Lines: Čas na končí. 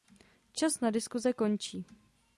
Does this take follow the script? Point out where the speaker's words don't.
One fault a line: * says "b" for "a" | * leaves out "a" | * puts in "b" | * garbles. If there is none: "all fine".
* puts in "diskuse"